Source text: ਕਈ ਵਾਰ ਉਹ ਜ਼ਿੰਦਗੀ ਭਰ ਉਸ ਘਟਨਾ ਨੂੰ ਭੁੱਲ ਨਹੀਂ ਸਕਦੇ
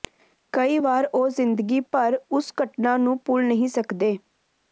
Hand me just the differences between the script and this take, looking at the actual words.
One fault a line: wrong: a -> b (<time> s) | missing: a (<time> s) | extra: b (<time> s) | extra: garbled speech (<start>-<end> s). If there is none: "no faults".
no faults